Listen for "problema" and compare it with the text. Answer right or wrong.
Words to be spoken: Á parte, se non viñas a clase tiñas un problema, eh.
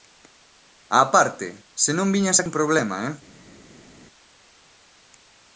right